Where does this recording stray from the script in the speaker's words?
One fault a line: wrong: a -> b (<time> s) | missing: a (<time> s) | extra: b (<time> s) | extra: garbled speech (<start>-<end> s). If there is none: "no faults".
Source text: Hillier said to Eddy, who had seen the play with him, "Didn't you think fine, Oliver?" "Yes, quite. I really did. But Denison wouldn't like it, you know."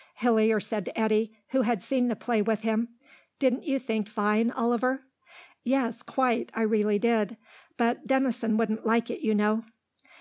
no faults